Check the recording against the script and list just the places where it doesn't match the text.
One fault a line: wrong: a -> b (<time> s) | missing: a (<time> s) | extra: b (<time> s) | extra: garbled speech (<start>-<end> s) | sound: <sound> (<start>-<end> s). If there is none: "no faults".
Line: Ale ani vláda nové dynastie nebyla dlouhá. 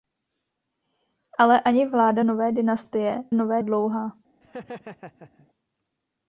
wrong: nebyla -> nové (3.3 s)
sound: laugh (4.4-5.5 s)